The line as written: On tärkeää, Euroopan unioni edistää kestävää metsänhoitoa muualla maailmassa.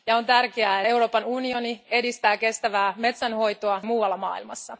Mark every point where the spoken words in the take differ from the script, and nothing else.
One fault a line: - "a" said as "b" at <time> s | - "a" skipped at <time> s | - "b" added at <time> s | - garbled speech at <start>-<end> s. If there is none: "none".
none